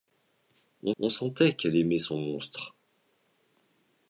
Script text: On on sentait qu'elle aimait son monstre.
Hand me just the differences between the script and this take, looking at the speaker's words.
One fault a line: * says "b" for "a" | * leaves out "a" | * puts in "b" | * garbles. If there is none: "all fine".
all fine